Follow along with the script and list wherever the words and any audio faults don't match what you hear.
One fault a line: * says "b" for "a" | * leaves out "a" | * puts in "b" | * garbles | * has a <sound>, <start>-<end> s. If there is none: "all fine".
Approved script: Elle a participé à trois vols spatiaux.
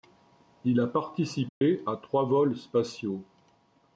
* says "Il" for "Elle"
* has a dropout, 1.5-1.6 s